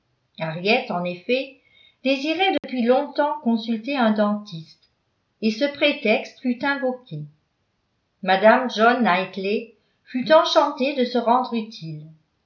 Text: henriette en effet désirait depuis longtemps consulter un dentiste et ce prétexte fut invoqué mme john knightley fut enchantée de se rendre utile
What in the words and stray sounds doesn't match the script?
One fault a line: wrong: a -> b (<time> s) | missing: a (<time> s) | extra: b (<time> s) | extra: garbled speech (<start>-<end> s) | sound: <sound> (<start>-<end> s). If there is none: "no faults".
sound: dropout (2.6-2.6 s)